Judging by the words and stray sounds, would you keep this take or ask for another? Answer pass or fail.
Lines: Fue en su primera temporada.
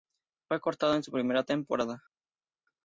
fail